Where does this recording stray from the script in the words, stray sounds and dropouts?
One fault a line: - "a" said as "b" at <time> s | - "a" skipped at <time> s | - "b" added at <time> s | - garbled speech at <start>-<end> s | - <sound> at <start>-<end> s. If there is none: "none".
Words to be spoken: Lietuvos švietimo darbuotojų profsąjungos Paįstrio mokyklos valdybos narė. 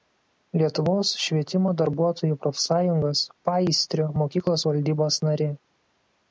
none